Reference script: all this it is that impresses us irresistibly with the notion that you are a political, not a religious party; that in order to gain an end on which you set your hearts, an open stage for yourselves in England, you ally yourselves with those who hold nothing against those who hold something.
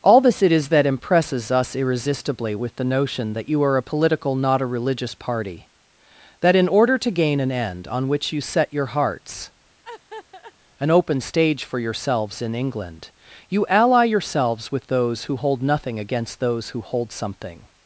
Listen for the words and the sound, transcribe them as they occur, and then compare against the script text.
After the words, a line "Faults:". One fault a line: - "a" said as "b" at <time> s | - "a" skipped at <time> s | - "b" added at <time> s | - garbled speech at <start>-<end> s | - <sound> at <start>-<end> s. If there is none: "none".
all this it is that impresses us irresistibly with the notion that you are a political, not a religious party; that in order to gain an end on which you set your hearts, an open stage for yourselves in England, you ally yourselves with those who hold nothing against those who hold something.
Faults:
- laugh at 9.8-10.5 s